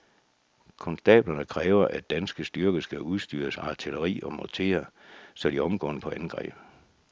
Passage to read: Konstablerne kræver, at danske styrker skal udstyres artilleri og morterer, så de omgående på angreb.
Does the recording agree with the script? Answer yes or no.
yes